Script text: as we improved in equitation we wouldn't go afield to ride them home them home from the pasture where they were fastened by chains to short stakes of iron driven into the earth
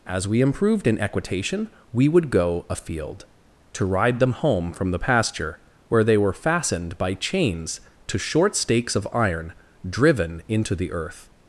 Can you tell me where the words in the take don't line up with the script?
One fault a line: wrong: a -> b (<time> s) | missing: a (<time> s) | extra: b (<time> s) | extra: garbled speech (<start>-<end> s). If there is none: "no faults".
wrong: wouldn't -> would (2.1 s)
missing: them home (4.7 s)